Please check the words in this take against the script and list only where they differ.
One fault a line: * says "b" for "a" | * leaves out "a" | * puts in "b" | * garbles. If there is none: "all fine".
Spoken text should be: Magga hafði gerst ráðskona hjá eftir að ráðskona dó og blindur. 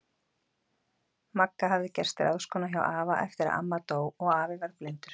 * puts in "afa"
* says "amma" for "ráðskona"
* puts in "afi varð"